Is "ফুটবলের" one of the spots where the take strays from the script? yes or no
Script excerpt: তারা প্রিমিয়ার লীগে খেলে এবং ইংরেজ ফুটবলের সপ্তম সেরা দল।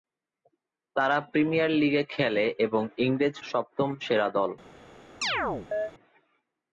yes